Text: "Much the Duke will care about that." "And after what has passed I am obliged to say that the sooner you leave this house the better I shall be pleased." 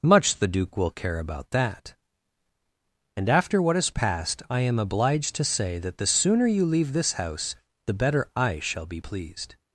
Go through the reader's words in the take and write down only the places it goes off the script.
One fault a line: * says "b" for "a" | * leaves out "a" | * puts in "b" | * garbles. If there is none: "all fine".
all fine